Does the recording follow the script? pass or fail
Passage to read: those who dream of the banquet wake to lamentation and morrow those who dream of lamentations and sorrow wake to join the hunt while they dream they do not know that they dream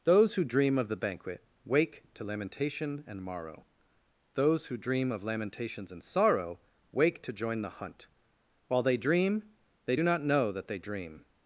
pass